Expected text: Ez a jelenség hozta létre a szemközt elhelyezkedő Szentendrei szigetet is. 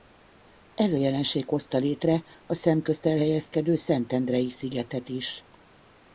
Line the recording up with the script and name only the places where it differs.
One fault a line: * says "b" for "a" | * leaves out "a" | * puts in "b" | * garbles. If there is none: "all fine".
all fine